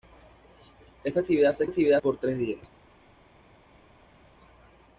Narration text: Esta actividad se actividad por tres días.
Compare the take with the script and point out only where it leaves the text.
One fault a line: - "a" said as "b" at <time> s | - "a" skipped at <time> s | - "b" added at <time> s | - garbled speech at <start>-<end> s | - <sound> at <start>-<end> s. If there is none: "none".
none